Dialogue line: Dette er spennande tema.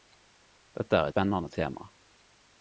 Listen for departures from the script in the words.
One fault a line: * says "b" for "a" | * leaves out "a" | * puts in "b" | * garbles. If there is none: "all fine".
all fine